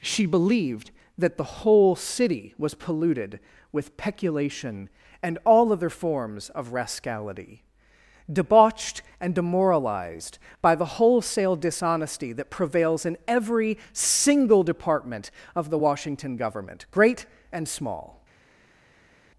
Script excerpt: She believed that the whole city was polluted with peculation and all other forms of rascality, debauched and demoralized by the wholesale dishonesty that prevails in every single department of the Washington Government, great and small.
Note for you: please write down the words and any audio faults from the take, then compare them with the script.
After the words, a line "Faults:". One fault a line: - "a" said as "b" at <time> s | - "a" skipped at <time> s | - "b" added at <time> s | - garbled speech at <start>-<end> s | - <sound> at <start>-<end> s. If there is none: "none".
She believed that the whole city was polluted with peculation and all other forms of rascality, debauched and demoralized by the wholesale dishonesty that prevails in every single department of the Washington Government, great and small.
Faults:
none